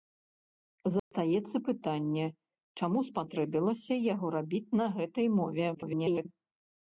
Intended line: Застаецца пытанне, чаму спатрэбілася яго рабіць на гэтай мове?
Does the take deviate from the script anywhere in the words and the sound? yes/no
yes